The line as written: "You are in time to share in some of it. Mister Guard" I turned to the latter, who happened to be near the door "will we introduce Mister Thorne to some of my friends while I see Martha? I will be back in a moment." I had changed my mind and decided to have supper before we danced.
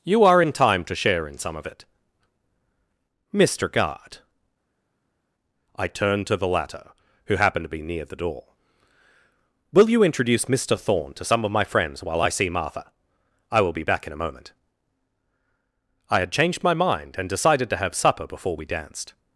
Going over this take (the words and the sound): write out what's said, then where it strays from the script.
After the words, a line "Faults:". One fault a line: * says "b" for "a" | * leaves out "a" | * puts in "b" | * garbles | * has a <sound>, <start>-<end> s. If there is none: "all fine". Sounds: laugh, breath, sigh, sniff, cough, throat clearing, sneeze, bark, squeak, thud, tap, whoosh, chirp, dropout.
"You are in time to share in some of it. Mister Guard" I turned to the latter, who happened to be near the door "will you introduce Mister Thorne to some of my friends while I see Martha? I will be back in a moment." I had changed my mind and decided to have supper before we danced.
Faults:
* says "you" for "we"